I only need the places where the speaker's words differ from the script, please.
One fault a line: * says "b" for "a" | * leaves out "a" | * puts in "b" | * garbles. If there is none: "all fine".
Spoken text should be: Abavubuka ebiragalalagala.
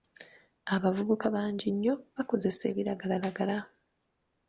* puts in "bangi nnyo bakozesa"